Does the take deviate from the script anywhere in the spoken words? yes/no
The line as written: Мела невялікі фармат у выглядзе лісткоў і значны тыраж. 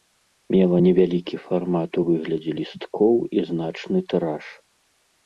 no